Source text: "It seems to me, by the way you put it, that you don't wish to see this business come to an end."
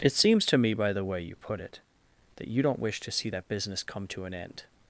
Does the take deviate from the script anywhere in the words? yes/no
yes